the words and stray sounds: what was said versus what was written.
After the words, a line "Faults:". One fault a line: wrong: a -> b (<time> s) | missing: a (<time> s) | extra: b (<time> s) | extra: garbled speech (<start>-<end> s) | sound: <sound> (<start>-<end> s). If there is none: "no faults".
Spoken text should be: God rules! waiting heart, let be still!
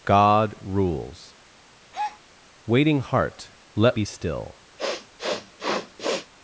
God rules! waiting heart, let be still!
Faults:
sound: breath (1.9-2.2 s)
sound: sniff (4.8-6.3 s)